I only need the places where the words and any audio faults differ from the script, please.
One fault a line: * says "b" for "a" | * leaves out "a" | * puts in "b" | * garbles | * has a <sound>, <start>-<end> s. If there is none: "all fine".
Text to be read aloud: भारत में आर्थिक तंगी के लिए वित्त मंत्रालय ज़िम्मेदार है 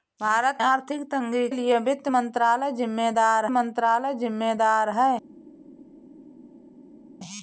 * leaves out "में"
* leaves out "के"
* puts in "मंत्रालय ज़िम्मेदार"